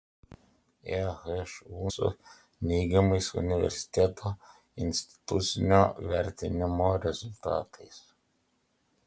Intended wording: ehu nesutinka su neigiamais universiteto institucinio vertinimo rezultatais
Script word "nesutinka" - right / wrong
wrong